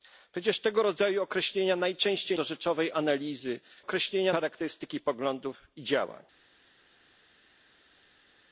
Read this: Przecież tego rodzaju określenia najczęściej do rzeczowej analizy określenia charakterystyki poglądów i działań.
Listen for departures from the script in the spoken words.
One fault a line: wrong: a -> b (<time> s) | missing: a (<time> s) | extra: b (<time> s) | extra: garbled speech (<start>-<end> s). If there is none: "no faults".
no faults